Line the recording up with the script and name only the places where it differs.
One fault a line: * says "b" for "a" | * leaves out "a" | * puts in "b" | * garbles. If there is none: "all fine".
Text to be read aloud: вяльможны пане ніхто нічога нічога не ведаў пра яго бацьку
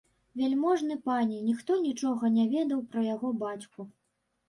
* leaves out "нічога"